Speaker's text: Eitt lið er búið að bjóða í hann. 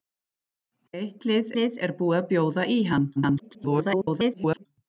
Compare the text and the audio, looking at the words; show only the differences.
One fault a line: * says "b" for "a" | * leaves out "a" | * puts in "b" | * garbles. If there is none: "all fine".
* puts in "lið"
* garbles